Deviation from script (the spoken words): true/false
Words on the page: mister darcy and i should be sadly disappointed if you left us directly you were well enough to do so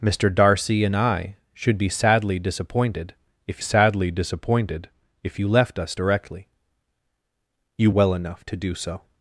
true